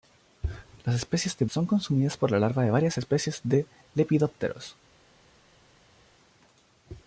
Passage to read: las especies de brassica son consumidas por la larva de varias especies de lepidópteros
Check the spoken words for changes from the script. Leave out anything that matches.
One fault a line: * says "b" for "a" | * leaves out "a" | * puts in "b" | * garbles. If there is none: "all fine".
* leaves out "brassica"